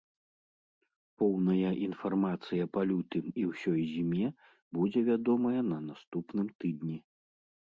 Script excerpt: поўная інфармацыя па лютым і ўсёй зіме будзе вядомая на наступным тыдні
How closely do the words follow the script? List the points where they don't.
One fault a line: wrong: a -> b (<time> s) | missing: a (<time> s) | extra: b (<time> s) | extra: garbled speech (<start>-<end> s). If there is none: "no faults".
no faults